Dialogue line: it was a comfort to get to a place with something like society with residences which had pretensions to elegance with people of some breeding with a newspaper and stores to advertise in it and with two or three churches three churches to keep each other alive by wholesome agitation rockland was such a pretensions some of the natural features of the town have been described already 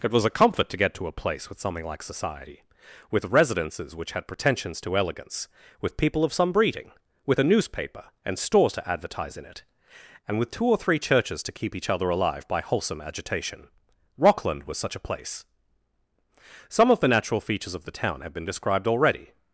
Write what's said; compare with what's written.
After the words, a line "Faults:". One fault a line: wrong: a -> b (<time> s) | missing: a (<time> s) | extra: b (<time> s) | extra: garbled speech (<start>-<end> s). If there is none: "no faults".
it was a comfort to get to a place with something like society with residences which had pretensions to elegance with people of some breeding with a newspaper and stores to advertise in it and with two or three churches to keep each other alive by wholesome agitation rockland was such a place some of the natural features of the town have been described already
Faults:
missing: three churches (11.4 s)
wrong: pretensions -> place (15.1 s)